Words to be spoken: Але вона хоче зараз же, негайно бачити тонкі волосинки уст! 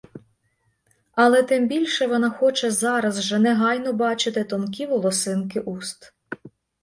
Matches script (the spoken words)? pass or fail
fail